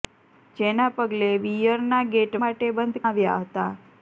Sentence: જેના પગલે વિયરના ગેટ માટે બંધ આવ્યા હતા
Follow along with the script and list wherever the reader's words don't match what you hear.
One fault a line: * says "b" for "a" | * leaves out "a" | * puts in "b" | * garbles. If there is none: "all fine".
all fine